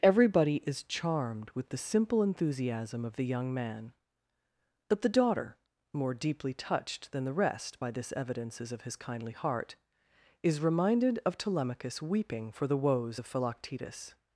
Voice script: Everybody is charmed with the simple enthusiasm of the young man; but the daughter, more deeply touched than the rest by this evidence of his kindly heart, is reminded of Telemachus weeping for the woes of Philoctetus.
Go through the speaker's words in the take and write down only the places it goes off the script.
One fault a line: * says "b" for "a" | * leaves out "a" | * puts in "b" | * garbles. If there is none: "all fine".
* says "evidences" for "evidence"